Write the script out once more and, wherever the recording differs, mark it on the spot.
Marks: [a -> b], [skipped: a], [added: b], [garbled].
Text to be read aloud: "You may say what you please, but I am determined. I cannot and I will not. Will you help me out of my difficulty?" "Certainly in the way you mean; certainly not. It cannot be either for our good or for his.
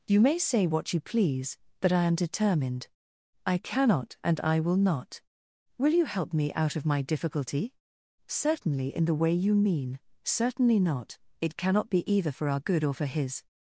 "You may say what you please, but I am determined. I cannot and I will not. Will you help me out of my difficulty?" "Certainly in the way you mean; certainly not. It cannot be either for our good or for his.